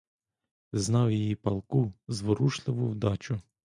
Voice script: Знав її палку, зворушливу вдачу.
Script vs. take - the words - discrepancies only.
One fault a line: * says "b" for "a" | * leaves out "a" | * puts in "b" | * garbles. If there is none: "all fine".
all fine